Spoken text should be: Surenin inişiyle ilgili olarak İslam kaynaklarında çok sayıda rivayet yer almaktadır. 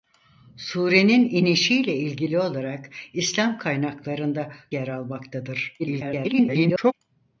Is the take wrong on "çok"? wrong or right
wrong